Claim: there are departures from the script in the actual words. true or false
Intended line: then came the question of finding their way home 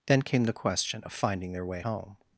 false